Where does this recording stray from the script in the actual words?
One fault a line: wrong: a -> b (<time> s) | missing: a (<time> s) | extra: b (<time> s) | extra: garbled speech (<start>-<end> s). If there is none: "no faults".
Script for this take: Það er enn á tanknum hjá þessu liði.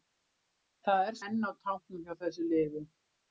no faults